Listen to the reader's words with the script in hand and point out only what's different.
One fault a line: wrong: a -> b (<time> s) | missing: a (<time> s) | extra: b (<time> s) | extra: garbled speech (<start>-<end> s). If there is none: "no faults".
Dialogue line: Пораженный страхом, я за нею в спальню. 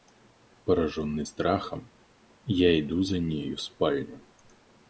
extra: иду (2.8 s)